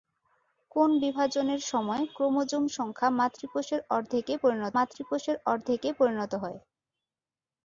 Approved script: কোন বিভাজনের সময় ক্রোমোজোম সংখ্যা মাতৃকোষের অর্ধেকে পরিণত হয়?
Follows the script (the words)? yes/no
no